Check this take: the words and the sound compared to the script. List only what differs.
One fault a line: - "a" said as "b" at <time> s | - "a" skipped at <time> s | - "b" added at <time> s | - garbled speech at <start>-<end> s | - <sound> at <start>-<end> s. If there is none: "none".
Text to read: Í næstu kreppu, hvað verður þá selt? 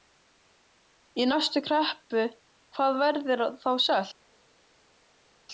none